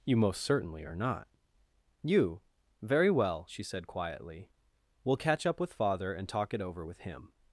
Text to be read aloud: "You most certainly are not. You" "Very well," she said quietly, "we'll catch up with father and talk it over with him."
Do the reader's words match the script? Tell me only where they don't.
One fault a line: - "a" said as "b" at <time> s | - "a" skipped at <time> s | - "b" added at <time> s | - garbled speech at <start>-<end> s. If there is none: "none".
none